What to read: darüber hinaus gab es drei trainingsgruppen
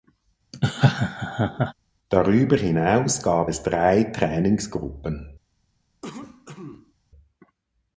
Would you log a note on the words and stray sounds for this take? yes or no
yes